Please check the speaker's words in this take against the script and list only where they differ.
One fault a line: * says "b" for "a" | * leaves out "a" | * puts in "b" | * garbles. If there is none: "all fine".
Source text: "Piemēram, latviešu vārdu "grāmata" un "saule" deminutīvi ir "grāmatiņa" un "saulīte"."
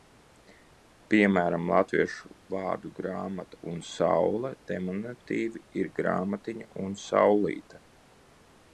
all fine